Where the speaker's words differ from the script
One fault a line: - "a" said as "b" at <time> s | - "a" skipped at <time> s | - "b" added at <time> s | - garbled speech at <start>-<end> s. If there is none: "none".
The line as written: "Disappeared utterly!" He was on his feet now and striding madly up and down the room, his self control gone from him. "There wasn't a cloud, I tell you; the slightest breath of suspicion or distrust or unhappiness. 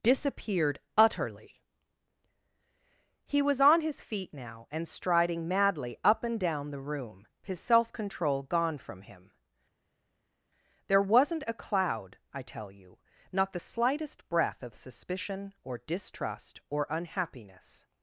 - "not" added at 13.3 s